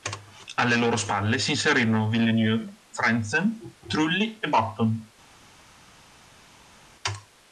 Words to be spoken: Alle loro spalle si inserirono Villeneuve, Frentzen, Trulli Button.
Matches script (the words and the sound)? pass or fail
fail